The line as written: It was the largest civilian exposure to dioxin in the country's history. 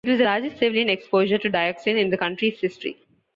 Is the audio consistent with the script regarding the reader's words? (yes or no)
yes